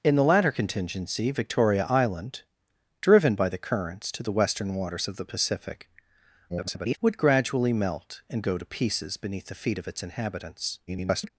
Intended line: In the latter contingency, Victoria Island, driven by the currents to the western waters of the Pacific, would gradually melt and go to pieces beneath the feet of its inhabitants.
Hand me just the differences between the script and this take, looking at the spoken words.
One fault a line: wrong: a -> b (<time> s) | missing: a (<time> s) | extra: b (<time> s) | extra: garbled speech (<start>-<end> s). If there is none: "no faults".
extra: garbled speech (6.5-7.0 s)
extra: garbled speech (10.9-11.3 s)